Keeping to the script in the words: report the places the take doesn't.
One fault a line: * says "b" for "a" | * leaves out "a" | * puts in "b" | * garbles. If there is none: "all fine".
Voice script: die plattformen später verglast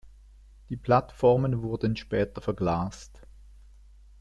* puts in "wurden"